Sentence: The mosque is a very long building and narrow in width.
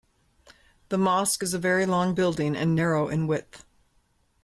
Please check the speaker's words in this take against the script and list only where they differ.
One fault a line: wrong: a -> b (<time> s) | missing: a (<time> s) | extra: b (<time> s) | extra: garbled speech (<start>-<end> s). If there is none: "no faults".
no faults